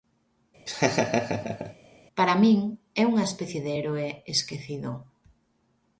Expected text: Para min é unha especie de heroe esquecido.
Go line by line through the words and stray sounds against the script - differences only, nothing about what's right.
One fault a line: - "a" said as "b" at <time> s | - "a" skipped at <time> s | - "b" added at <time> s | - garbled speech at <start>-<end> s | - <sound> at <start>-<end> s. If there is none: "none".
- laugh at 0.7-1.8 s